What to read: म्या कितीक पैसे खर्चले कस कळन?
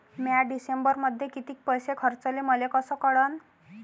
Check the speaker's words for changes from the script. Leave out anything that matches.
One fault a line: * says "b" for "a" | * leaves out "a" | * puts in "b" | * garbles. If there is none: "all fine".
* puts in "डिसेंबरमध्ये"
* puts in "मले"